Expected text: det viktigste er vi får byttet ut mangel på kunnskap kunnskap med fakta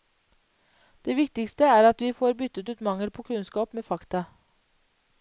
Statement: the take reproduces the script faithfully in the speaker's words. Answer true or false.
false